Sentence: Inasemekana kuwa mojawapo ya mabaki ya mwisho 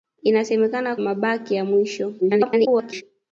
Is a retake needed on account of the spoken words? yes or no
yes